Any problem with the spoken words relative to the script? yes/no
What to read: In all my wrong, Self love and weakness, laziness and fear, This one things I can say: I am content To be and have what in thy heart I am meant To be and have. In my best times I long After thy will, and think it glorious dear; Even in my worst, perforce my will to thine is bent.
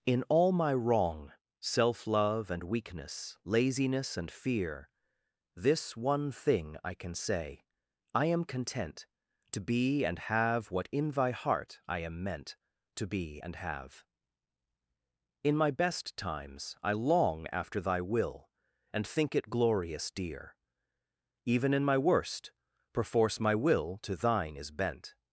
yes